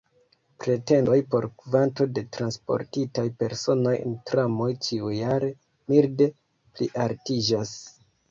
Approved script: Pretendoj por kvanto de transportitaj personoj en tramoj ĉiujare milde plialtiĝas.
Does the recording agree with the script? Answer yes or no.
yes